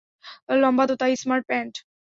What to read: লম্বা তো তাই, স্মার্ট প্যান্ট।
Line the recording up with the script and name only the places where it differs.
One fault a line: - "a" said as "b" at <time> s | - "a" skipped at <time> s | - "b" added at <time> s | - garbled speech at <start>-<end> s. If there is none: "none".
none